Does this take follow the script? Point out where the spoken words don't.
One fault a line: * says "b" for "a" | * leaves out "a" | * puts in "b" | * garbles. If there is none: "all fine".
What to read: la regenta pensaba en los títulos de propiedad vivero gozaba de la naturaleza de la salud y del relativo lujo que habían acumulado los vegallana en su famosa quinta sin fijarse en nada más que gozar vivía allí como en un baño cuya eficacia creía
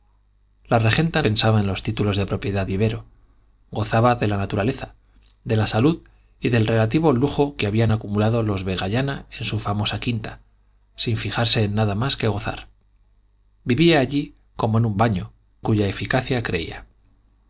all fine